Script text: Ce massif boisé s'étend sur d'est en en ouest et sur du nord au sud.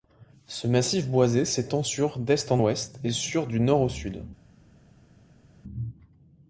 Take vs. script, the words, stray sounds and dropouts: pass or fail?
fail